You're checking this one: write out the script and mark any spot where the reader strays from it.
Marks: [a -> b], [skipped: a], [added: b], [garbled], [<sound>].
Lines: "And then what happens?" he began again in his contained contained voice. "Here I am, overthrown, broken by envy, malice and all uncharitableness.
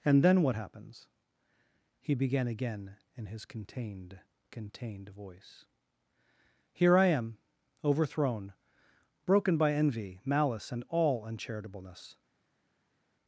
"And then what happens?" he began again in his contained contained voice. "Here I am, overthrown, broken by envy, malice and all uncharitableness.